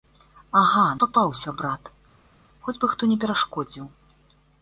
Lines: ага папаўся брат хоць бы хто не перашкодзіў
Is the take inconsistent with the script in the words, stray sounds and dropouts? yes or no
no